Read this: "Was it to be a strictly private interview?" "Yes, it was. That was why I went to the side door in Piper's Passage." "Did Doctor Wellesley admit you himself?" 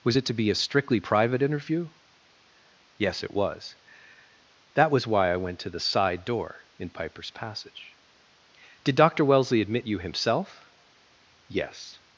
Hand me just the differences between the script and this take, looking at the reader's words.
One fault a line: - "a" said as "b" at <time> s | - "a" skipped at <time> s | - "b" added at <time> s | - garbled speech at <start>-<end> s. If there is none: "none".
- "Yes" added at 11.5 s